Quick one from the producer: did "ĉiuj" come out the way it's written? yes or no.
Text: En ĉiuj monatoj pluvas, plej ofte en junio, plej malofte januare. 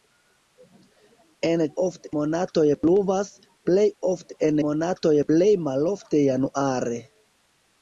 no